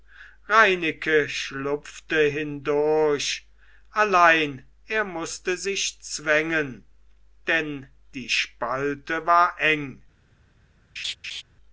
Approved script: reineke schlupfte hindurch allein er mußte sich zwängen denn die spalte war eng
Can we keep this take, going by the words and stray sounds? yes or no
no